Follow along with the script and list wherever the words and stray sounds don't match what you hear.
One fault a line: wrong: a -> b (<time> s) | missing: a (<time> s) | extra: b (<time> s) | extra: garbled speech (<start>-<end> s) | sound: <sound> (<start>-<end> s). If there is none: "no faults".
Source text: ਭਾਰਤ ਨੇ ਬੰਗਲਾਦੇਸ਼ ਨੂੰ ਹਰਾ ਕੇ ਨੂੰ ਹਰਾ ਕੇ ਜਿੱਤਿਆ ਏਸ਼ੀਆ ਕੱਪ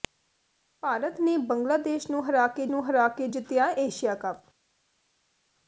no faults